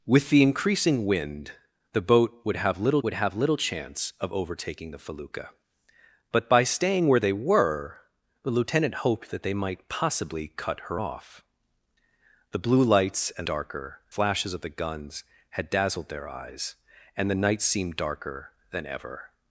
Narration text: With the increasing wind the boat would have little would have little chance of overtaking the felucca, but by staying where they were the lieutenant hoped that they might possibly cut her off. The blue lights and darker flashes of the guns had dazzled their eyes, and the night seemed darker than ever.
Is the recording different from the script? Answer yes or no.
no